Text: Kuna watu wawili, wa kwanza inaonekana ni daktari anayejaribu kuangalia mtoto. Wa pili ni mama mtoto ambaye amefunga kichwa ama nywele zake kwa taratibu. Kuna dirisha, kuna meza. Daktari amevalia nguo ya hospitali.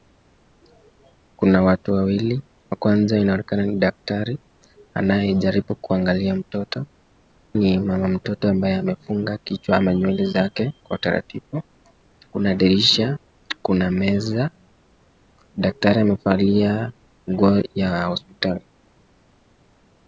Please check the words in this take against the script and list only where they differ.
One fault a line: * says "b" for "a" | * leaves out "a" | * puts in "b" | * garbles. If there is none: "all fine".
* leaves out "Wa pili"